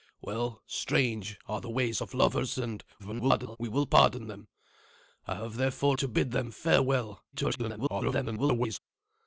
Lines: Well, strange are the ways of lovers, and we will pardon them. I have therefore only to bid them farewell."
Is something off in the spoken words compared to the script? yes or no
yes